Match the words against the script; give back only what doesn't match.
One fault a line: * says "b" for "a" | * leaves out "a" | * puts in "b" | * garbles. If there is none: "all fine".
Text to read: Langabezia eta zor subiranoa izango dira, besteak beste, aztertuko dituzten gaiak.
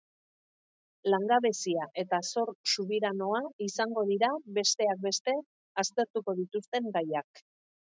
all fine